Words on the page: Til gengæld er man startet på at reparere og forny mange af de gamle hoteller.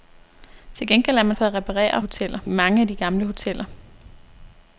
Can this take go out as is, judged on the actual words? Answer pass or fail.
fail